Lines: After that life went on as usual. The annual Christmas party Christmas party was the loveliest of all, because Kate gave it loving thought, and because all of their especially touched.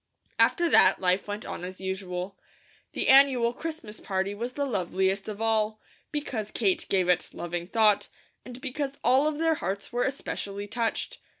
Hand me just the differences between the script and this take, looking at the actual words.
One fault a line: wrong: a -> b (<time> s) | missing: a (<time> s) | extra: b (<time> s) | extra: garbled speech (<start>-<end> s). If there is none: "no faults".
missing: Christmas party (4.3 s)
extra: hearts were (9.5 s)